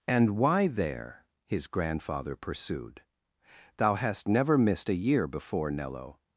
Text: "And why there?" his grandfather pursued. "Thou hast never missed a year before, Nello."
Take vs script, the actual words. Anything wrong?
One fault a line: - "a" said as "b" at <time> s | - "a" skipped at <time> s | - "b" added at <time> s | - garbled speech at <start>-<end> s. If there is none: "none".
none